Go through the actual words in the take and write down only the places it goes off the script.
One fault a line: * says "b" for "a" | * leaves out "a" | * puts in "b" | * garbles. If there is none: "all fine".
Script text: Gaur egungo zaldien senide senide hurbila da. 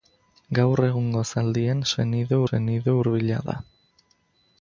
all fine